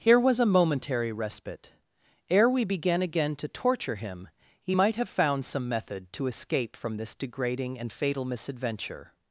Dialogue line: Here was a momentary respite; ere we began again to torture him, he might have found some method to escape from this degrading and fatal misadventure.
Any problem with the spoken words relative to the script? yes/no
no